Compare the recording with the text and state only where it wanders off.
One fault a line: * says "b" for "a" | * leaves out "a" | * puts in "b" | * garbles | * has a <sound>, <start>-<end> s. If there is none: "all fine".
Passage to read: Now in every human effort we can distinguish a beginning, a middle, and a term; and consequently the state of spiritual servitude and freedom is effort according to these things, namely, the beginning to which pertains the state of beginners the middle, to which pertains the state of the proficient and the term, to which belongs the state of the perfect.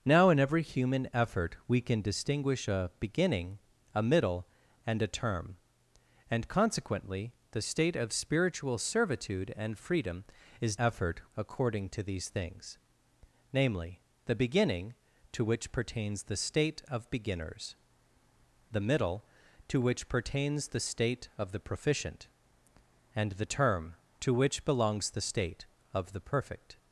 all fine